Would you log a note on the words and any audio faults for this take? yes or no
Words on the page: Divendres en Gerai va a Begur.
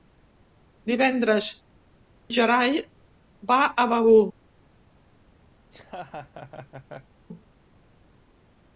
yes